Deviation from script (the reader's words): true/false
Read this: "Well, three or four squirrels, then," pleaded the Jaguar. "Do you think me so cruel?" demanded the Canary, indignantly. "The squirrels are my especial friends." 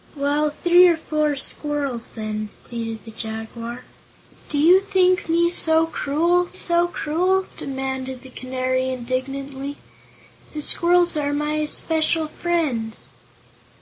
true